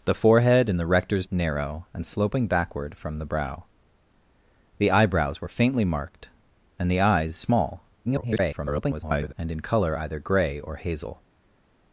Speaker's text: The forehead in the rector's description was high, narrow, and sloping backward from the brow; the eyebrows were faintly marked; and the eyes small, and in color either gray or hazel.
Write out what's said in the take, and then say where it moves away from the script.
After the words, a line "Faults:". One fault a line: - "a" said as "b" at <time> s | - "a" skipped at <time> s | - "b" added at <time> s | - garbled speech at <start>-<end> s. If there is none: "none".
The forehead in the rector's narrow, and sloping backward from the brow; the eyebrows were faintly marked; and the eyes small, [garbled] and in color either gray or hazel.
Faults:
- "description was high" skipped at 1.3 s
- garbled speech at 8.0-9.3 s